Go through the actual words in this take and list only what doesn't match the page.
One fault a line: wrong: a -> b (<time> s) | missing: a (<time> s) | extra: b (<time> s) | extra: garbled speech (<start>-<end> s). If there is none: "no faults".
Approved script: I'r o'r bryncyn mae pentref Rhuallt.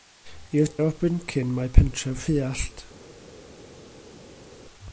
no faults